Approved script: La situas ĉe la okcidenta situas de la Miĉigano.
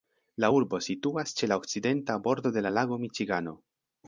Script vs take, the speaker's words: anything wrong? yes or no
yes